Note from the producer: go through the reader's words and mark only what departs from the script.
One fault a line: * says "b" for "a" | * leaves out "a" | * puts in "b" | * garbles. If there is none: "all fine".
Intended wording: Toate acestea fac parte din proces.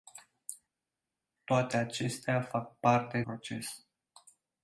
* leaves out "din"